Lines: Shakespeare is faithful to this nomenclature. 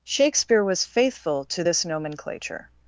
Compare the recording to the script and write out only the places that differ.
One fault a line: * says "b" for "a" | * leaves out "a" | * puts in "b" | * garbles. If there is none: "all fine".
* says "was" for "is"